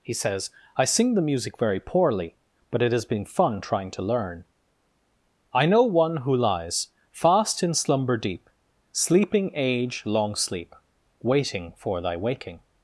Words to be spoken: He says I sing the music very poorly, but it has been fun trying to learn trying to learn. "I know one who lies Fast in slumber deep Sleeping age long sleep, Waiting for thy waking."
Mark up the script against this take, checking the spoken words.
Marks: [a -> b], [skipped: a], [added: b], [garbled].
He says I sing the music very poorly, but it has been fun trying to learn [skipped: trying to learn.] "I know one who lies Fast in slumber deep Sleeping age long sleep, Waiting for thy waking."